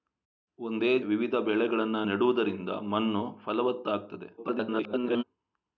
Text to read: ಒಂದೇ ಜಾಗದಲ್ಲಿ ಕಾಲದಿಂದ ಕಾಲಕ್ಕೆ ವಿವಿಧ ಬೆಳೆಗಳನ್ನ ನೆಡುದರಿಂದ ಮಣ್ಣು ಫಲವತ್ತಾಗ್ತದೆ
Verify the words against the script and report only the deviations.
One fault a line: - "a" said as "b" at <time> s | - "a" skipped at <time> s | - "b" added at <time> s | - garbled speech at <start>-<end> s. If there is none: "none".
- "ಜಾಗದಲ್ಲಿ ಕಾಲದಿಂದ ಕಾಲಕ್ಕೆ" skipped at 1.0 s
- garbled speech at 4.4-5.2 s